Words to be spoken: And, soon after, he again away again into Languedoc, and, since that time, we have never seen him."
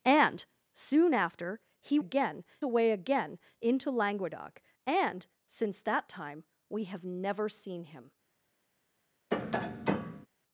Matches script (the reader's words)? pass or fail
pass